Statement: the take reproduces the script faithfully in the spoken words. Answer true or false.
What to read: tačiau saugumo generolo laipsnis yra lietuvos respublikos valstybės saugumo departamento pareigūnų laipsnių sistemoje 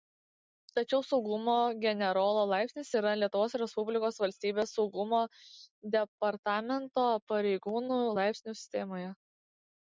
true